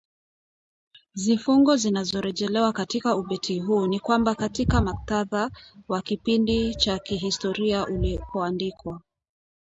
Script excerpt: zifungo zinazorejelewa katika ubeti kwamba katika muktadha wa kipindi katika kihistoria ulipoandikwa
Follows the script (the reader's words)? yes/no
no